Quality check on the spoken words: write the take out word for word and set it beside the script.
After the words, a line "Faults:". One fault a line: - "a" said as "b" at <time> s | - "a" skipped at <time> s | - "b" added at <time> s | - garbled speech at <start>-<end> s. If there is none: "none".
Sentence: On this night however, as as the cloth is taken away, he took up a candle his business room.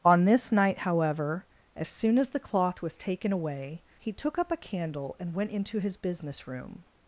On this night however, as soon as the cloth was taken away, he took up a candle and went into his business room.
Faults:
- "soon" added at 1.9 s
- "is" said as "was" at 2.8 s
- "and went into" added at 5.2 s